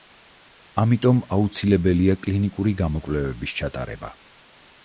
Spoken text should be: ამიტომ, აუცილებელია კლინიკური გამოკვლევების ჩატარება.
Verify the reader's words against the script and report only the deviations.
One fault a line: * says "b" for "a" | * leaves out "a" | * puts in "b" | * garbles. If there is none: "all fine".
all fine